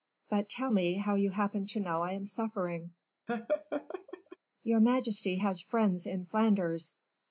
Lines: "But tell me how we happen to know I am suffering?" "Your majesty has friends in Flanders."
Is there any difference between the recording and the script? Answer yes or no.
yes